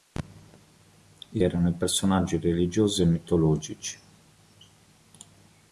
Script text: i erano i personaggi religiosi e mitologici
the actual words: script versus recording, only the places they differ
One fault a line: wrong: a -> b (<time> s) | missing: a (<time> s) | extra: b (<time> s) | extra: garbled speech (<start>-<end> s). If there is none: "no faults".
no faults